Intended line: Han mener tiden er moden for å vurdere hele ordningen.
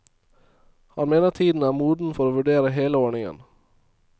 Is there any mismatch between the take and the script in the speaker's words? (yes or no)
no